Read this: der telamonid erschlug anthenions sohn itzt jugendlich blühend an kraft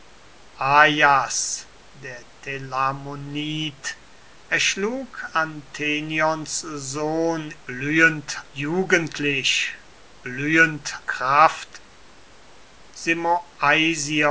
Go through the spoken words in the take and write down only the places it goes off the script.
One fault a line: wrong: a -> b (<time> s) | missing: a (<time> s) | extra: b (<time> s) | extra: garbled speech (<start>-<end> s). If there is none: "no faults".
wrong: itzt -> blühend (7.7 s)
missing: an (11.0 s)